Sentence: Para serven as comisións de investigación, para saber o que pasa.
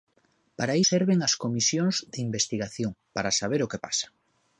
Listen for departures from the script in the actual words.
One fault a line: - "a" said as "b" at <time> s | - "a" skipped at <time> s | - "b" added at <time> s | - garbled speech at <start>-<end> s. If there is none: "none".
none